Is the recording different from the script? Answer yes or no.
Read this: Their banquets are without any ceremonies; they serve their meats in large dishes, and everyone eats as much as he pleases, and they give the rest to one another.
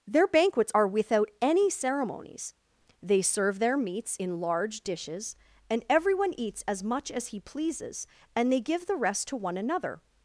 no